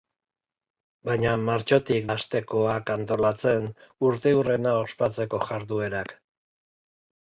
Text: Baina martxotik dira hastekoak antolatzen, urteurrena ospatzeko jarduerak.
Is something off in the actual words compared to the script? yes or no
yes